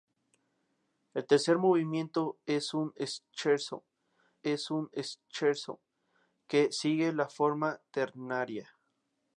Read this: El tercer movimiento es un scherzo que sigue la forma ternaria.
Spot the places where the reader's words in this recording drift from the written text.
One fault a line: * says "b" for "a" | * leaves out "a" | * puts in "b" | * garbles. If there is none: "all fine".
* puts in "es un scherzo"